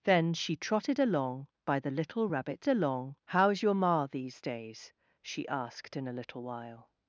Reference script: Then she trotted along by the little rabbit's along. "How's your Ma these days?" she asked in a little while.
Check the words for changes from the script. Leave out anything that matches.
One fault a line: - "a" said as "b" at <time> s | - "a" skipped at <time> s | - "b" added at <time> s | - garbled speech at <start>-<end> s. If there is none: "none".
none